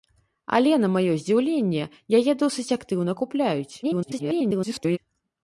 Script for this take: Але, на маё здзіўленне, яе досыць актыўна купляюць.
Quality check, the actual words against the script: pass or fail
fail